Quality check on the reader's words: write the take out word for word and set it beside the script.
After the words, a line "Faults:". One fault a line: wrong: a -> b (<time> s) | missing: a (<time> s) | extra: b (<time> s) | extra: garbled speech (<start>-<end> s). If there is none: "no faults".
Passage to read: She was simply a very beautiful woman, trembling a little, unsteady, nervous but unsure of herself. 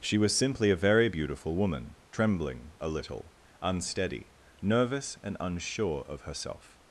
She was simply a very beautiful woman, trembling a little, unsteady, nervous and unsure of herself.
Faults:
wrong: but -> and (5.2 s)